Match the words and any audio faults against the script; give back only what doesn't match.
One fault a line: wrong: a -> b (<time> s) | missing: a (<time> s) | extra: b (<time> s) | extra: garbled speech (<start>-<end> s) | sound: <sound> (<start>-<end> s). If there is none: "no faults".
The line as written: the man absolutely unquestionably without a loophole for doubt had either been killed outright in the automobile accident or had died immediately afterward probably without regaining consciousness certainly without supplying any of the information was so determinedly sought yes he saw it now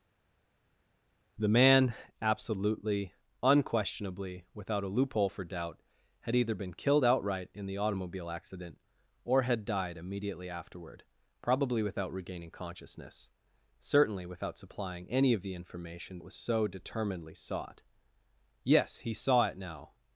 no faults